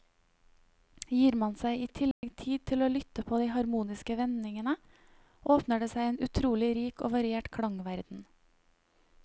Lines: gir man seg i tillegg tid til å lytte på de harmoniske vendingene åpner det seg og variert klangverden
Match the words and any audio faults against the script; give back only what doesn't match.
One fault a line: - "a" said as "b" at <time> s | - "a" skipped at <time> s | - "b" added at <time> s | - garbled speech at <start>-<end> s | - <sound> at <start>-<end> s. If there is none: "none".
- dropout at 2.1-2.2 s
- "en utrolig rik" added at 6.1 s